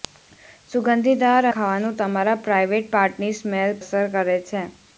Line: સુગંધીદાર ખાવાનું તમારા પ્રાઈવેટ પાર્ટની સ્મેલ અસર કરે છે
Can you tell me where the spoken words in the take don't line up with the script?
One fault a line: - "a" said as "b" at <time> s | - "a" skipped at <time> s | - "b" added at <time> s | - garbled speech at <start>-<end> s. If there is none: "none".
none